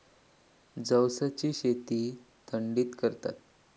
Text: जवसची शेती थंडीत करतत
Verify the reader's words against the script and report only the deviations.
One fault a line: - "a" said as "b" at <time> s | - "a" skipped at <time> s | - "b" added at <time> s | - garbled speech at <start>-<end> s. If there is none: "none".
none